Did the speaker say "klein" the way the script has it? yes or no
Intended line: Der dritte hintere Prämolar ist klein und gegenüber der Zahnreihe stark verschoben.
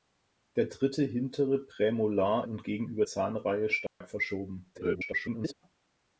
no